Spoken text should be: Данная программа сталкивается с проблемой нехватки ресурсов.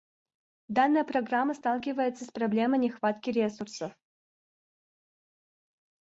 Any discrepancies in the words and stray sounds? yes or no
no